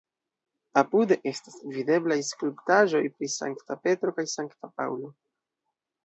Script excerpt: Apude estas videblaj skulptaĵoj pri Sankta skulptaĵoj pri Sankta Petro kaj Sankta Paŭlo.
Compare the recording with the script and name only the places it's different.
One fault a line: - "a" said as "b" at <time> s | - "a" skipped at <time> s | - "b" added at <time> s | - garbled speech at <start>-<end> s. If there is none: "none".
- "skulptaĵoj pri Sankta" skipped at 3.8 s